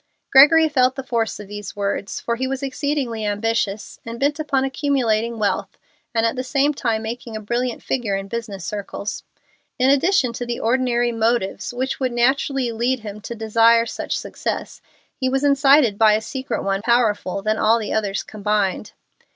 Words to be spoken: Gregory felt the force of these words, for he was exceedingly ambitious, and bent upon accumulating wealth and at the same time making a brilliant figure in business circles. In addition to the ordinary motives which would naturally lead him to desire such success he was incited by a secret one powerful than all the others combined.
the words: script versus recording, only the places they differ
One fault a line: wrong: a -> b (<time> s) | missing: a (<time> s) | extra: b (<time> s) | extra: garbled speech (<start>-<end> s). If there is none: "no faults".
no faults